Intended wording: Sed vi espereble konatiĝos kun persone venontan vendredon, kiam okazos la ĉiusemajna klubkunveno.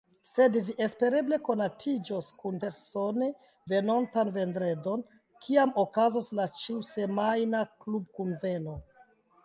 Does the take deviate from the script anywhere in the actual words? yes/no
no